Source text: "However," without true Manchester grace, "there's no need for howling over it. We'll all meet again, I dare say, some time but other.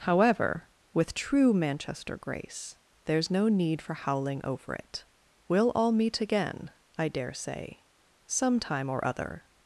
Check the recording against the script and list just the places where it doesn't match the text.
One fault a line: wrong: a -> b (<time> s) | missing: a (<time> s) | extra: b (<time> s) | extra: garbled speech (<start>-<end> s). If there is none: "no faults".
wrong: without -> with (0.9 s)
wrong: but -> or (8.9 s)